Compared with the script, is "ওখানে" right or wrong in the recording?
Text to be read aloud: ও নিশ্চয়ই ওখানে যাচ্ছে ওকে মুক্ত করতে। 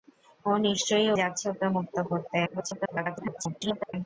wrong